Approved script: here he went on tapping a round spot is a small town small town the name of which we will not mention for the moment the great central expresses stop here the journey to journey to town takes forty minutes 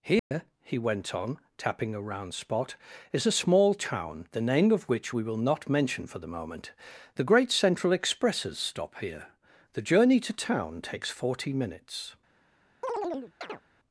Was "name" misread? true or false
false